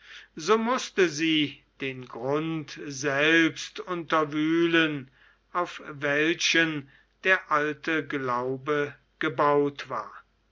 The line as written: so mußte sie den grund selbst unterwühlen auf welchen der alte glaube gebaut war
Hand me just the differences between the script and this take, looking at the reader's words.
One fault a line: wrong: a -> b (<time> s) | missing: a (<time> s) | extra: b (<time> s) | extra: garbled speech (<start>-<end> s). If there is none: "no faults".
no faults